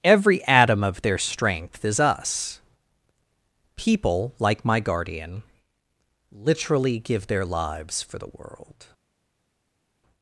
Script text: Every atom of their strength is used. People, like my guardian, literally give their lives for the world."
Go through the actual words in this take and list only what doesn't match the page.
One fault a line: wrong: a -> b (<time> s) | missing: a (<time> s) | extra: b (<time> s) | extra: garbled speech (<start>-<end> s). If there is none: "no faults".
wrong: used -> us (2.0 s)